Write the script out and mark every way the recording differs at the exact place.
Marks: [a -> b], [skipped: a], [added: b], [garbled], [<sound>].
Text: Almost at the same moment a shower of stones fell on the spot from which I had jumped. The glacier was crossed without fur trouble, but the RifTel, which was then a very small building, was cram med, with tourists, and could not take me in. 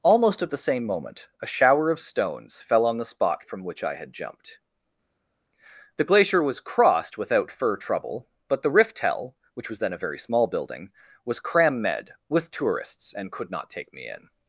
Almost at the same moment a shower of stones fell on the spot from which I had jumped. The glacier was crossed without fur trouble, but the RifTel, which was then a very small building, was cram med, with tourists, and could not take me in.